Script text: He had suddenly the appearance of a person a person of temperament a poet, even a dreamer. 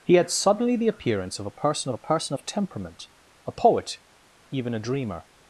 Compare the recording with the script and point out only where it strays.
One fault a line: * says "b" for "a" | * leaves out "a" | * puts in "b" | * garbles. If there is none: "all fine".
all fine